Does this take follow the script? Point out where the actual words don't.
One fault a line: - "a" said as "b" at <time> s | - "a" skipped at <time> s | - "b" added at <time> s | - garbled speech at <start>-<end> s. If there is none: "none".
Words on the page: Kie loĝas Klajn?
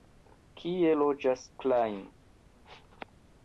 none